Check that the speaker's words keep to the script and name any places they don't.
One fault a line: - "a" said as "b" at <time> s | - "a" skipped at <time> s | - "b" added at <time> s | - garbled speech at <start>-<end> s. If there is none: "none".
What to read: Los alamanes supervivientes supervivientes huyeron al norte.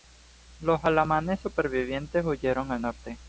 - "supervivientes" skipped at 2.2 s